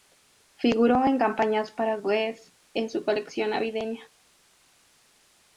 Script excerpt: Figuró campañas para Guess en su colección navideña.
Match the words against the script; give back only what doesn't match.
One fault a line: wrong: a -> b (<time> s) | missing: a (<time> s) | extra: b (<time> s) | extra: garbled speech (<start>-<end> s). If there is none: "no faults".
extra: en (1.1 s)